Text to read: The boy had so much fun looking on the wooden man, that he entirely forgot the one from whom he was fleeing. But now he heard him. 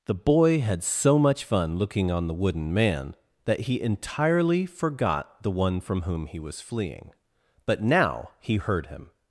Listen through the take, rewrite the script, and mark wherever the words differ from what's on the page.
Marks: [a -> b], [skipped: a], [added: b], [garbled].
The boy had so much fun looking on the wooden man, that he entirely forgot the one from whom he was fleeing. But now he heard him.